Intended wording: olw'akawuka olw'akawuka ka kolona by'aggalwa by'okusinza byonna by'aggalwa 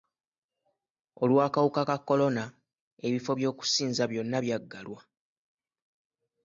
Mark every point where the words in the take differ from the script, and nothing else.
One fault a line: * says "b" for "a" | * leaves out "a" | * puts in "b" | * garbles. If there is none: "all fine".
* leaves out "olw'akawuka"
* says "ebifo" for "by'aggalwa"